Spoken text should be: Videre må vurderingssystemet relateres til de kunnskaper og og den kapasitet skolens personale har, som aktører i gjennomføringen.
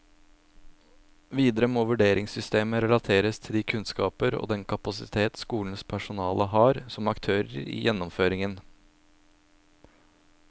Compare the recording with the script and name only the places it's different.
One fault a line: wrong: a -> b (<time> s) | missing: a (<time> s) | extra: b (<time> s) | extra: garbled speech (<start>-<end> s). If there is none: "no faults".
missing: og (4.5 s)